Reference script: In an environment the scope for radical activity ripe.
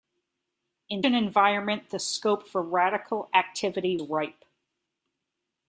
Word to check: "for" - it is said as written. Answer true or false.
true